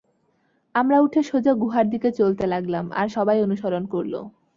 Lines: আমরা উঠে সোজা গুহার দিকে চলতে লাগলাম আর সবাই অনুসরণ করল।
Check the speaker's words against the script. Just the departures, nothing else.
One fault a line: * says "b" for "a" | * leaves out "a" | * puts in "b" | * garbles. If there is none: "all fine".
all fine